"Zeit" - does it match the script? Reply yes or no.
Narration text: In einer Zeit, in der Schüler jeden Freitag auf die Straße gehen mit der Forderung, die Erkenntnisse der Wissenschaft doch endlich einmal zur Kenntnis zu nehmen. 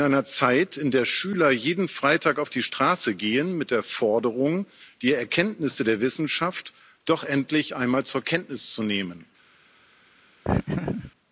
yes